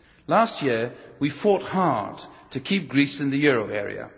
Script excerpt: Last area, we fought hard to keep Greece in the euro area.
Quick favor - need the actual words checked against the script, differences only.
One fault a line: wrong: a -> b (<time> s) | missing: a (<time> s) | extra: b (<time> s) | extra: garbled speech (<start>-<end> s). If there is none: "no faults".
wrong: area -> year (0.6 s)